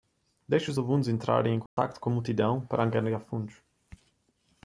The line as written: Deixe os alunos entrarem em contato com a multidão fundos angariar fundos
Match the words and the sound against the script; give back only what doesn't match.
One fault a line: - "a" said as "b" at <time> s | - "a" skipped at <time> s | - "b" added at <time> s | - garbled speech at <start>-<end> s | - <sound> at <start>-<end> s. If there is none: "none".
- dropout at 1.7-1.8 s
- "fundos" said as "para" at 2.6 s